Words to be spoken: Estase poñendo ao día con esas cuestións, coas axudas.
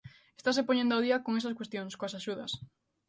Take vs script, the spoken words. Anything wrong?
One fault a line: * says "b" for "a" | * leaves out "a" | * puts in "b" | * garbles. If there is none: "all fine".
all fine